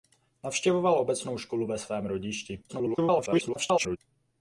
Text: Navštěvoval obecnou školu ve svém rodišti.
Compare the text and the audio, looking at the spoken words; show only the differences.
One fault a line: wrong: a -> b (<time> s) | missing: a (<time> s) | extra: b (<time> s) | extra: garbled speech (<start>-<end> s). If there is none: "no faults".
extra: garbled speech (2.7-4.0 s)